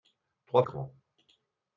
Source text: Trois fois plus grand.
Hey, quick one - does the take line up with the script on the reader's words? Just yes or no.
no